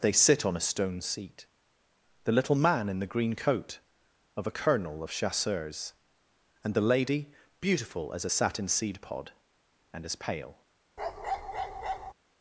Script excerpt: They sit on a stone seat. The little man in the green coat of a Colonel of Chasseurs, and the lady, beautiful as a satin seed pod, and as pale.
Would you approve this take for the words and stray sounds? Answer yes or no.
no